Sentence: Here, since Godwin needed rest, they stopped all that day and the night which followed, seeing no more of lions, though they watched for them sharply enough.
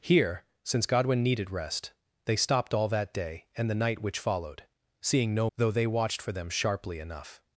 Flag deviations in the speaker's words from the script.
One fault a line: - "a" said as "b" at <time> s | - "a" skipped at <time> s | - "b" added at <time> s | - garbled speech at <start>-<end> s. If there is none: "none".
- "more of lions" skipped at 5.5 s